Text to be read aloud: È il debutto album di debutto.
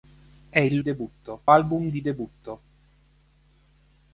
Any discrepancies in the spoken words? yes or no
no